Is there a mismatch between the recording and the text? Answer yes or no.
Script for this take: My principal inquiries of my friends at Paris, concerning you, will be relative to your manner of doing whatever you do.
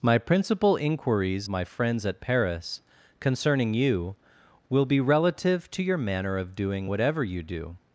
yes